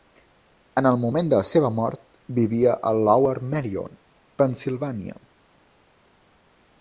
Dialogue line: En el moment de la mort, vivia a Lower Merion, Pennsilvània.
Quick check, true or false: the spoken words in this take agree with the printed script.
false